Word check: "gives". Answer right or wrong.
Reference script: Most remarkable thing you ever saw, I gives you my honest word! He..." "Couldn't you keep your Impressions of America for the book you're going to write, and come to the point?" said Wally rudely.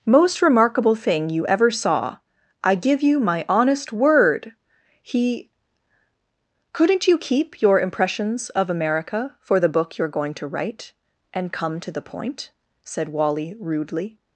wrong